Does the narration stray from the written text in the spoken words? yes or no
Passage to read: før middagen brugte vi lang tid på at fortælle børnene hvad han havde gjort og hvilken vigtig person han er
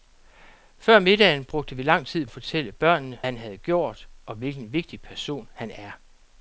yes